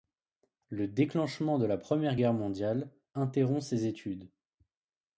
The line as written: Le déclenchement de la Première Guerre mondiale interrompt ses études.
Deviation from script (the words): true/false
false